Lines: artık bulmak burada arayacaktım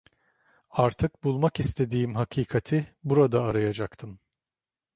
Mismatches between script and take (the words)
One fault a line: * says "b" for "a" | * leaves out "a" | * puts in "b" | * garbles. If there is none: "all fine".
* puts in "istediğim hakikati"